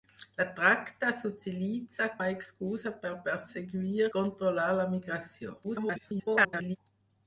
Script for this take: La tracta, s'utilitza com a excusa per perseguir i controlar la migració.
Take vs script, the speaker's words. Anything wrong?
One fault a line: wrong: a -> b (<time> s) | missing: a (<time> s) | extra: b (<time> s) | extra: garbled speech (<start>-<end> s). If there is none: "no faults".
missing: com (2.1 s)
missing: i (4.1 s)
extra: garbled speech (5.6-6.8 s)